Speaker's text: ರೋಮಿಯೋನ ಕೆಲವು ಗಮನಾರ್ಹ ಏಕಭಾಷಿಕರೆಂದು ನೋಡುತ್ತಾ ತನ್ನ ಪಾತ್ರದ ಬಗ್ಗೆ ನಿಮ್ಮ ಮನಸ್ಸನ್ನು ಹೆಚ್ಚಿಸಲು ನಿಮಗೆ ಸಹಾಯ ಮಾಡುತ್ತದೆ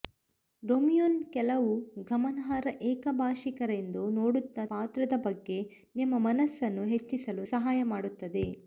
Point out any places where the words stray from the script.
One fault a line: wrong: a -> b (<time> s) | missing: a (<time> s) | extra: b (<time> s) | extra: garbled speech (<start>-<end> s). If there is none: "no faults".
missing: ತನ್ನ (4.7 s)
missing: ನಿಮಗೆ (7.5 s)